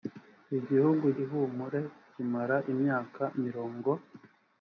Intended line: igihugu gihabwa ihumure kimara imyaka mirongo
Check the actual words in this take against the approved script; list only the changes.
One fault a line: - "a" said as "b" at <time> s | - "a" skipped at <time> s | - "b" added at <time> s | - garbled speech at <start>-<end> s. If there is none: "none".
- "gihabwa" skipped at 1.1 s